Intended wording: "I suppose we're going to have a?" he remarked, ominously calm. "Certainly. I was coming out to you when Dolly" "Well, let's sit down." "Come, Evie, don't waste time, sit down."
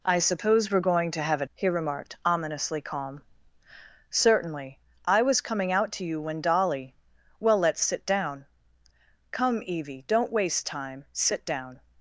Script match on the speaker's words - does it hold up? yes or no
yes